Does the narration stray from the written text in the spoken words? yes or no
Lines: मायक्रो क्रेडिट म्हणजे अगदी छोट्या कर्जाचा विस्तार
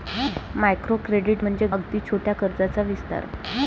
no